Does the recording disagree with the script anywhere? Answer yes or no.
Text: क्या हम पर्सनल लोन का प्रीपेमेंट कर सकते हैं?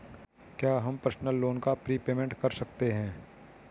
no